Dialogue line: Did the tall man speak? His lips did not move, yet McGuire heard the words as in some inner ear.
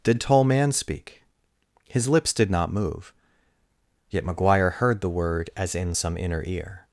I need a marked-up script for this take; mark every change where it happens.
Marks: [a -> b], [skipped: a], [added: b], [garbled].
Did [skipped: the] tall man speak? His lips did not move, yet McGuire heard the [words -> word] as in some inner ear.